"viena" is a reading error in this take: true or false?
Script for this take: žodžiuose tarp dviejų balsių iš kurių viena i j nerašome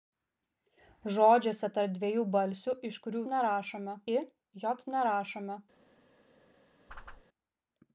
true